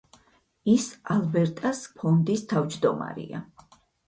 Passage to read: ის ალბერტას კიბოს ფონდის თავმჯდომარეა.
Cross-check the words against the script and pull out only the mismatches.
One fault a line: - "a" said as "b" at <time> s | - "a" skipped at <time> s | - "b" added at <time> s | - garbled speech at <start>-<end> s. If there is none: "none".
- "კიბოს" skipped at 1.8 s